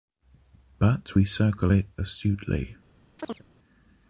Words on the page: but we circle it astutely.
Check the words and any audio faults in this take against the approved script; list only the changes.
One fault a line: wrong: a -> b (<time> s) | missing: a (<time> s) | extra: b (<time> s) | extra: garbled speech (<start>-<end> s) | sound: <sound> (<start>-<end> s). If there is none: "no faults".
sound: chirp (3.2-3.4 s)